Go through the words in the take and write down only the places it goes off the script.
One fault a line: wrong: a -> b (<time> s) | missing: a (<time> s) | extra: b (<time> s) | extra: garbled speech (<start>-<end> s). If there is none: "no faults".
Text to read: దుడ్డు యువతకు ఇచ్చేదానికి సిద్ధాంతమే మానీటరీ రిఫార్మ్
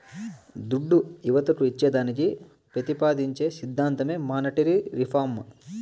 extra: పెతిపాదించే (2.8 s)